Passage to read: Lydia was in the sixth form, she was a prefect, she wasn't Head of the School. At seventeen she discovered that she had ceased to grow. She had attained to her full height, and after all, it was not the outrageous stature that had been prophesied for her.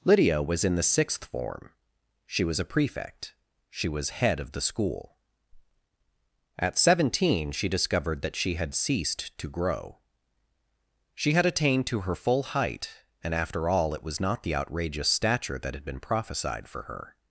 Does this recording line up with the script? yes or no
no